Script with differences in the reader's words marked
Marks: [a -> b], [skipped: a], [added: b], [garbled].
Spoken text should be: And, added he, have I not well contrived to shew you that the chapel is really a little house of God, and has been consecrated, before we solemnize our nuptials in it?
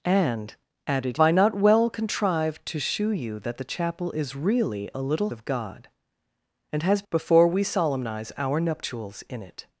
And, added [skipped: he, have] I not well contrived to shew you that the chapel is really a little [skipped: house] of God, and has [skipped: been consecrated,] before we solemnize our nuptials in it?